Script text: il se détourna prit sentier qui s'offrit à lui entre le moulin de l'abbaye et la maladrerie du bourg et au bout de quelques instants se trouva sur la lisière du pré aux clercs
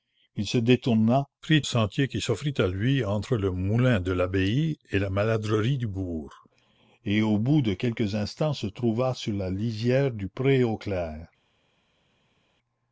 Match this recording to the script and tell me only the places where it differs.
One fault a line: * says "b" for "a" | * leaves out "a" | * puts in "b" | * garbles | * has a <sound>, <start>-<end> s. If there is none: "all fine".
all fine